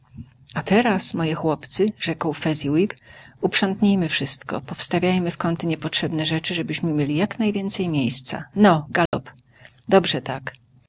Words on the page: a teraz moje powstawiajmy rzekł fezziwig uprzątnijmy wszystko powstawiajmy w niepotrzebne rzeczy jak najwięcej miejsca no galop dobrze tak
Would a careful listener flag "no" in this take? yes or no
no